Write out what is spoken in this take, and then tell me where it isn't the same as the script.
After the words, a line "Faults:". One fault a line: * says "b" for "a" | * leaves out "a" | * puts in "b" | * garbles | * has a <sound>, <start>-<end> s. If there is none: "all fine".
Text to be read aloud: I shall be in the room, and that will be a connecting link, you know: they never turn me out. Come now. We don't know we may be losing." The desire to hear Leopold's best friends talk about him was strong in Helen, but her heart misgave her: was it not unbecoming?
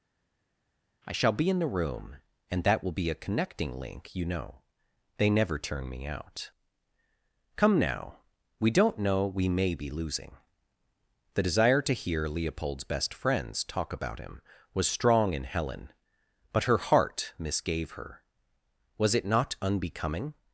I shall be in the room, and that will be a connecting link, you know: they never turn me out. Come now. We don't know we may be losing." The desire to hear Leopold's best friends talk about him was strong in Helen, but her heart misgave her: was it not unbecoming?
Faults:
all fine